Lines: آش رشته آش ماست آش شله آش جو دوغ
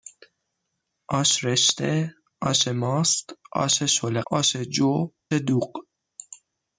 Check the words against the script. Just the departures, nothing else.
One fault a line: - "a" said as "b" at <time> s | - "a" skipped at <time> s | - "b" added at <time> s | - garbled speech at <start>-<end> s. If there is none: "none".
none